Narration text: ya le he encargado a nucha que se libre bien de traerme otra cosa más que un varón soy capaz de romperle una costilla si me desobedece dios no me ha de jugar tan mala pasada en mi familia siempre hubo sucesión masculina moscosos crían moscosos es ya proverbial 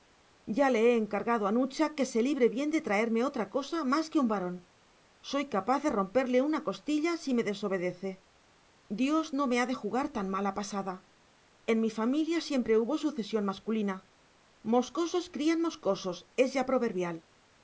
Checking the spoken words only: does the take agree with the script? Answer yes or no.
yes